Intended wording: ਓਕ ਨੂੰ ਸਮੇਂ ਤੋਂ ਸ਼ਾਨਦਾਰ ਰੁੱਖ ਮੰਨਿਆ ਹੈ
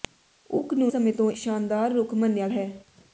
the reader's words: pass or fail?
pass